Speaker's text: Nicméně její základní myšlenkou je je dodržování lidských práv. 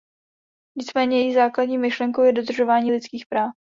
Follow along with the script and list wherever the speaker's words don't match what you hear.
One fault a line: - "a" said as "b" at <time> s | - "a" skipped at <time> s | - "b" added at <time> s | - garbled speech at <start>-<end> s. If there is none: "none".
- "je" skipped at 2.3 s